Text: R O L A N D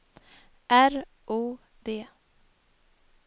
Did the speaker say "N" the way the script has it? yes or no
no